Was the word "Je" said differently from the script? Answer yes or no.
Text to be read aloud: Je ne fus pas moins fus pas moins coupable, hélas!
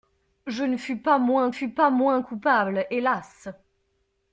no